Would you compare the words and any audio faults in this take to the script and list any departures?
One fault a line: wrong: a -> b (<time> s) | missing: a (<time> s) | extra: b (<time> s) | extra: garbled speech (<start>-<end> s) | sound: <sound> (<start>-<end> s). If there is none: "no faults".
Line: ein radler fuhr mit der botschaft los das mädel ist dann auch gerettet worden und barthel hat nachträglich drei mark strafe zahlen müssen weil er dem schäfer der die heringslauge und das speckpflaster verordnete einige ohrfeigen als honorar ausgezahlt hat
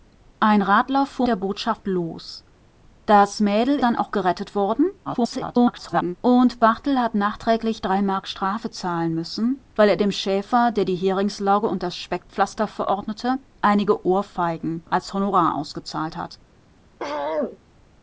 missing: mit (1.3 s)
missing: ist (3.8 s)
extra: garbled speech (5.1-6.2 s)
sound: throat clearing (17.0-17.6 s)